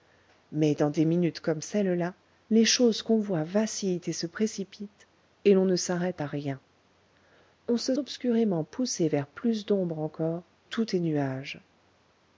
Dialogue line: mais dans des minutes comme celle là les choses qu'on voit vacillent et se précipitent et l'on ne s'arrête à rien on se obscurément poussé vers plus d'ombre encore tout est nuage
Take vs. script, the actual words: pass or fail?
pass